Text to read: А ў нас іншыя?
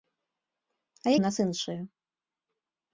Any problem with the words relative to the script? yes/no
no